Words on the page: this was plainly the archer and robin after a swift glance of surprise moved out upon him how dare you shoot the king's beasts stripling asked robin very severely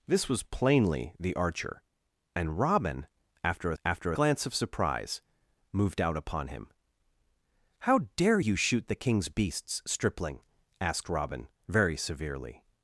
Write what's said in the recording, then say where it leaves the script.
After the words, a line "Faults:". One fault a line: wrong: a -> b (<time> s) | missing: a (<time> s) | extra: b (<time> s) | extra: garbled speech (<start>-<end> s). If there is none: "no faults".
this was plainly the archer and robin after a after glance of surprise moved out upon him how dare you shoot the king's beasts stripling asked robin very severely
Faults:
wrong: swift -> after (3.8 s)